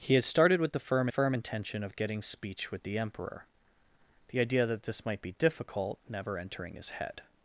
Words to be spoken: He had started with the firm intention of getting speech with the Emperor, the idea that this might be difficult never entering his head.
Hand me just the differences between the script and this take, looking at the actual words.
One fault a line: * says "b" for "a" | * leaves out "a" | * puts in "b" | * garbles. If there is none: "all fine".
* puts in "firm"